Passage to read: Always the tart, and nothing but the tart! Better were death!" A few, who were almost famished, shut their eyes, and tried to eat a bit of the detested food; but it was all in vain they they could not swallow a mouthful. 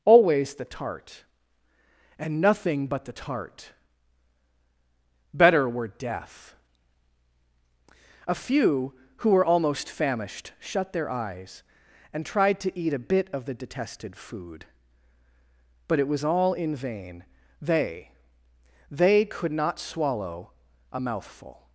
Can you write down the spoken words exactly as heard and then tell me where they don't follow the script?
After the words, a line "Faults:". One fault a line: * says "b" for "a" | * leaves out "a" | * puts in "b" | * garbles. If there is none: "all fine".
Always the tart, and nothing but the tart! Better were death!" A few, who were almost famished, shut their eyes, and tried to eat a bit of the detested food; but it was all in vain they they could not swallow a mouthful.
Faults:
all fine